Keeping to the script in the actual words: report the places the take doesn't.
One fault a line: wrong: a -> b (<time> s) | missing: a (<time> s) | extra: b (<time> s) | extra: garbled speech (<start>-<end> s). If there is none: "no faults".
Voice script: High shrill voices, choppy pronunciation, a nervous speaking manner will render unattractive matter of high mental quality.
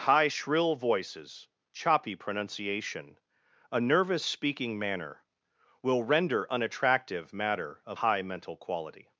no faults